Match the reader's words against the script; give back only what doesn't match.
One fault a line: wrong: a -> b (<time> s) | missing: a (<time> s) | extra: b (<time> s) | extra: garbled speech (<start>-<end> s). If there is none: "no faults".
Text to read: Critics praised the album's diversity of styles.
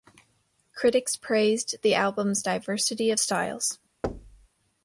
no faults